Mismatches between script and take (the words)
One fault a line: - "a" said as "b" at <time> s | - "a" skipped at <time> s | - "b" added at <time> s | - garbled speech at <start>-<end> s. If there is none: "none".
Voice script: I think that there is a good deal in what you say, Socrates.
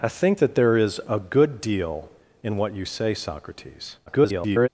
- garbled speech at 4.1-4.7 s